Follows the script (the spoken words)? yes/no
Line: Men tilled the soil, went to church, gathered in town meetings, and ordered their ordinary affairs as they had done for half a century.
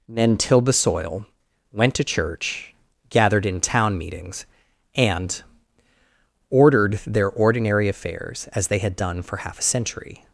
no